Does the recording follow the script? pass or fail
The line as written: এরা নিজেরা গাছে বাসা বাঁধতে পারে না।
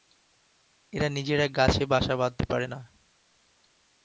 pass